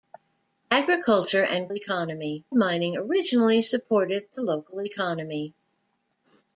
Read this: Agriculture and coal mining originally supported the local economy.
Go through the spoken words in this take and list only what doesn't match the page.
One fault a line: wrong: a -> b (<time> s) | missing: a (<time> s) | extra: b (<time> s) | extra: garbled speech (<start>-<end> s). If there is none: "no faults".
wrong: coal -> economy (1.7 s)